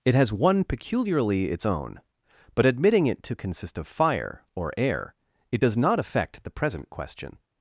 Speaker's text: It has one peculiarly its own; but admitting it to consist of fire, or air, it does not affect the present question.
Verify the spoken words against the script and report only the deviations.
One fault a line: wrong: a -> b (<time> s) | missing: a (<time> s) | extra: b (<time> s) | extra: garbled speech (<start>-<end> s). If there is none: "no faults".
no faults